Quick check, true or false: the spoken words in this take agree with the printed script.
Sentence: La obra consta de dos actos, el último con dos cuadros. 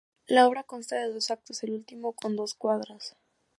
true